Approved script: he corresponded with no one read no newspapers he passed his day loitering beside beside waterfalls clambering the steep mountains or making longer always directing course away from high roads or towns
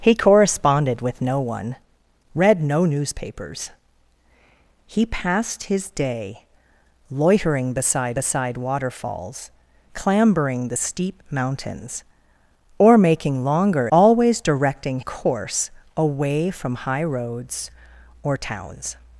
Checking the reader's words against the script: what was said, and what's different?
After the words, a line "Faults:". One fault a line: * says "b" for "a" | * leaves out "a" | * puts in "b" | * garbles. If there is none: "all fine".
he corresponded with no one read no newspapers he passed his day loitering beside beside waterfalls clambering the steep mountains or making longer always directing course away from high roads or towns
Faults:
all fine